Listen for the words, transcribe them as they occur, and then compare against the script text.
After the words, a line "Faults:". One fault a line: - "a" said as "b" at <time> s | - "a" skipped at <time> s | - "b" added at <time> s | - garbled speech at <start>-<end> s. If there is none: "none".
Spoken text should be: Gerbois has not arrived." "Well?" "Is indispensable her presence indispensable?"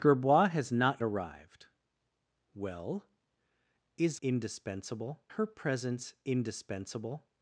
Gerbois has not arrived." "Well?" "Is indispensable her presence indispensable?"
Faults:
none